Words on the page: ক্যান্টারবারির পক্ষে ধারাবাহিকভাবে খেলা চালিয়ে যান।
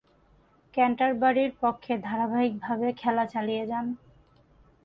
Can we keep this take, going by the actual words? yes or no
yes